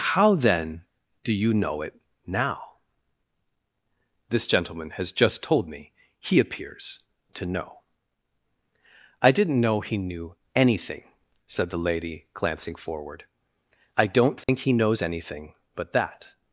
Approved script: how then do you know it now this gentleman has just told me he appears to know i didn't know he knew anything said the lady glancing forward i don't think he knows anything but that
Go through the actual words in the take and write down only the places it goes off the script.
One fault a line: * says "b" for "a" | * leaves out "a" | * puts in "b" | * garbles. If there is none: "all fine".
all fine